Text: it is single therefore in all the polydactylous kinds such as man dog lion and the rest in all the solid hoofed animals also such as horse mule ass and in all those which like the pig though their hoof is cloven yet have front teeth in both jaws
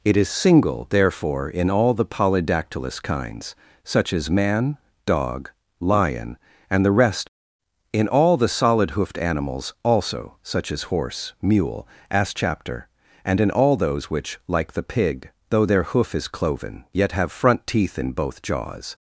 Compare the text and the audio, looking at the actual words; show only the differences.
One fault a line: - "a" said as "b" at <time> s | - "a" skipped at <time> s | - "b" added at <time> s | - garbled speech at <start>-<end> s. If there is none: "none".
- "chapter" added at 12.3 s